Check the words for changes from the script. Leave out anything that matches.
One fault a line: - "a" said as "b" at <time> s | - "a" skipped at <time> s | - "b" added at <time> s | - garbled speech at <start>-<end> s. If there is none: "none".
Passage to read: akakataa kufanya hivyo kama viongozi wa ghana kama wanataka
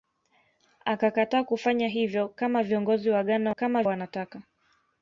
none